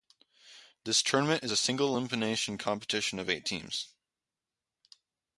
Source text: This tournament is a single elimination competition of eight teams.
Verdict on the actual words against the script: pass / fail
pass